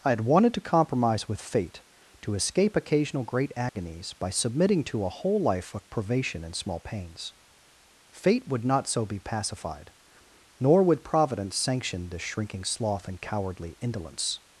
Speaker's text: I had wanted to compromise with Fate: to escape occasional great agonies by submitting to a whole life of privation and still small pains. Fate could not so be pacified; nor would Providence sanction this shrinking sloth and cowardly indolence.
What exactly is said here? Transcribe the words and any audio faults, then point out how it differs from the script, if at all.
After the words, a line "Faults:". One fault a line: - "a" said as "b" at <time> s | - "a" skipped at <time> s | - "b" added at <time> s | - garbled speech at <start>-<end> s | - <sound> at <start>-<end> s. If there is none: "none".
I had wanted to compromise with Fate: to escape occasional great agonies by submitting to a whole life of privation and small pains. Fate would not so be pacified; nor would Providence sanction this shrinking sloth and cowardly indolence.
Faults:
- dropout at 3.7-3.8 s
- "still" skipped at 6.5 s
- "could" said as "would" at 8.5 s